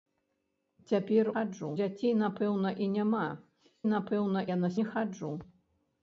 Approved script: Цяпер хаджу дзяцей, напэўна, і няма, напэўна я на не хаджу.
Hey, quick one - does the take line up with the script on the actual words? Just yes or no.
yes